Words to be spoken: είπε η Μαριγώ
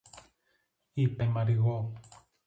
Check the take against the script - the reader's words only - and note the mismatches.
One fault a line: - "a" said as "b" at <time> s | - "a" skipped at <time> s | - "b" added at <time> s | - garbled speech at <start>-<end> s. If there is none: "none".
none